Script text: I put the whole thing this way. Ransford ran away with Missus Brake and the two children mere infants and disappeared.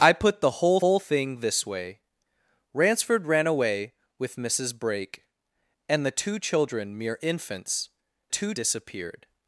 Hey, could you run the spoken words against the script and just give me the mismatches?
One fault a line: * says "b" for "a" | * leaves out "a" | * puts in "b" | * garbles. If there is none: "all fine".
* puts in "whole"
* says "two" for "and"